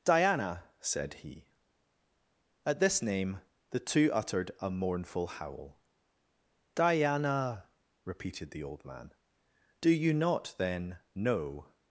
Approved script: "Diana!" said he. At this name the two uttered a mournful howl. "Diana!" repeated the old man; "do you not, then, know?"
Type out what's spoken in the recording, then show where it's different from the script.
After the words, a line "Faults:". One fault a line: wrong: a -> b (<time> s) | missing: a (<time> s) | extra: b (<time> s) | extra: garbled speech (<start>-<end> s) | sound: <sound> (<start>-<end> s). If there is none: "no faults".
"Diana!" said he. At this name the two uttered a mournful howl. "Diana!" repeated the old man; "do you not, then, know?"
Faults:
no faults